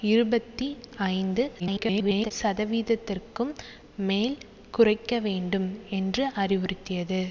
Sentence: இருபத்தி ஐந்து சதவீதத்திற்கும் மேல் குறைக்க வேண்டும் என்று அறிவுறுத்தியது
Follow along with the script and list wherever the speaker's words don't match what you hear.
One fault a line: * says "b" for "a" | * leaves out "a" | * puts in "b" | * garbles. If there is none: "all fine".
* garbles